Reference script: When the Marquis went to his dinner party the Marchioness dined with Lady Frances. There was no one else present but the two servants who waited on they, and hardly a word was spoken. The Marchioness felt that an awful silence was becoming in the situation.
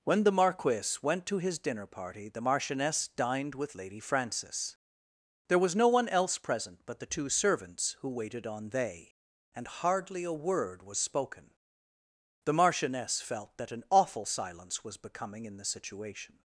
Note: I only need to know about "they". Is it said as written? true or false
true